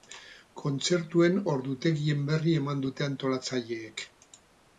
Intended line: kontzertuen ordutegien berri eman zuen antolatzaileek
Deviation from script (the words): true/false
true